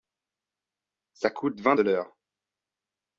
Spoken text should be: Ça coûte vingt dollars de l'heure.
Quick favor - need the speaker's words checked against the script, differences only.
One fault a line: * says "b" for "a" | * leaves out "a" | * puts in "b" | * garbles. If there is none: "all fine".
* leaves out "dollars"